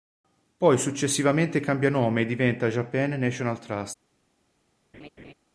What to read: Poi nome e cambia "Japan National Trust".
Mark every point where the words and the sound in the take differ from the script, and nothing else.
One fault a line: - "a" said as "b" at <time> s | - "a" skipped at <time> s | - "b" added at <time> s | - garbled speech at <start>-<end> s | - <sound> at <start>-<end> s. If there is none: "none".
- "successivamente cambia" added at 0.8 s
- "cambia" said as "diventa" at 2.2 s
- laugh at 4.9-5.3 s